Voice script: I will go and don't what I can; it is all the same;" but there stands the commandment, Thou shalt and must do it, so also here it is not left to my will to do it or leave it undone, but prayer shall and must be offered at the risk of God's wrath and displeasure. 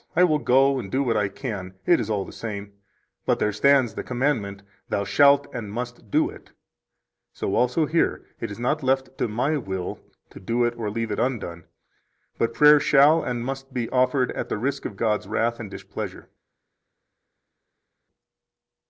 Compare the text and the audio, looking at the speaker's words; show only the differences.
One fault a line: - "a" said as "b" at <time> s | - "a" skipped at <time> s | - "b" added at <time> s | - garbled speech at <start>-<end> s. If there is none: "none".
- "don't" said as "do" at 0.9 s